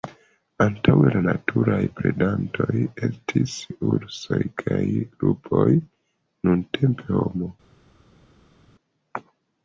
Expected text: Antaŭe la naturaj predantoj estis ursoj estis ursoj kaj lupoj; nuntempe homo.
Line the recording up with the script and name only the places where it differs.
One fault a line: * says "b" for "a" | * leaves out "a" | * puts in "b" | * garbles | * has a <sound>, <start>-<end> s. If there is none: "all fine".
* leaves out "estis ursoj"